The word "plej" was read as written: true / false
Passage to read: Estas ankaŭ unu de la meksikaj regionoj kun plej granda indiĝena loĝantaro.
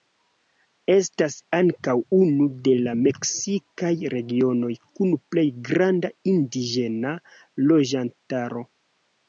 true